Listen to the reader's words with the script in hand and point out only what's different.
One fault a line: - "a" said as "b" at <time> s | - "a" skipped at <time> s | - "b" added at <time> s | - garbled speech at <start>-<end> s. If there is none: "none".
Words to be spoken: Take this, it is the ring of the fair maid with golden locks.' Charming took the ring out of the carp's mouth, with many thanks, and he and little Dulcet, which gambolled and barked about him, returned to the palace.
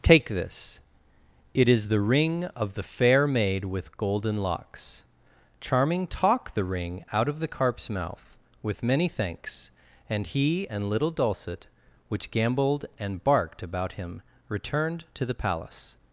- "took" said as "talk" at 6.1 s